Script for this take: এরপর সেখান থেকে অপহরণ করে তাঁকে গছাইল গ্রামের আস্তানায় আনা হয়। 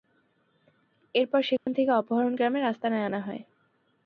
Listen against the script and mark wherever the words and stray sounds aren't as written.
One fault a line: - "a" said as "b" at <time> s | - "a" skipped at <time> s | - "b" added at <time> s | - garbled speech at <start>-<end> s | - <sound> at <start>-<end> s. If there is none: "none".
- dropout at 1.6-1.7 s
- "করে তাঁকে গছাইল" skipped at 2.3 s